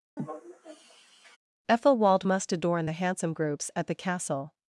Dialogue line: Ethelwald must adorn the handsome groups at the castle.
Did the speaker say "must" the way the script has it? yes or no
yes